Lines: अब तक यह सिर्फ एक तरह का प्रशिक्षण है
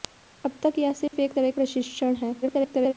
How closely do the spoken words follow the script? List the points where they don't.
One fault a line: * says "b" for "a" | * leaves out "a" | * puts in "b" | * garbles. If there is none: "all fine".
* leaves out "का"
* garbles